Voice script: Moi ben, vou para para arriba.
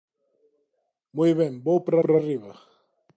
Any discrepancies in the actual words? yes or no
no